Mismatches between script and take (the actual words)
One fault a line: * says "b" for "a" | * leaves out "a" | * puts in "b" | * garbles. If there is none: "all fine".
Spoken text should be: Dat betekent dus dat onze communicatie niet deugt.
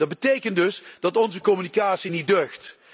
all fine